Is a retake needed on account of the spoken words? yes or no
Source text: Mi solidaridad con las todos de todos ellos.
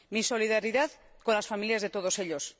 yes